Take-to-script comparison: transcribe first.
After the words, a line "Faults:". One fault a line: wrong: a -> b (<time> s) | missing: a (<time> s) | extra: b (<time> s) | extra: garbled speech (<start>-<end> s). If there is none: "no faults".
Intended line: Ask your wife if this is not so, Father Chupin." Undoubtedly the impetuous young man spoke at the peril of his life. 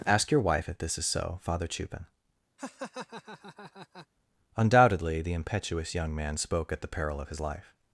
Ask your wife if this is so, Father Chupin." Undoubtedly the impetuous young man spoke at the peril of his life.
Faults:
missing: not (1.1 s)